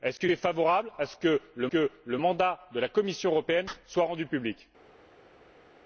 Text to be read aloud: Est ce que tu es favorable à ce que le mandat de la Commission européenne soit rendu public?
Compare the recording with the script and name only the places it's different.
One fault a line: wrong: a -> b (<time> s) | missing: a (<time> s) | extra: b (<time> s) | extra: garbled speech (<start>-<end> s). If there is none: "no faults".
missing: tu (0.3 s)
extra: que le (1.7 s)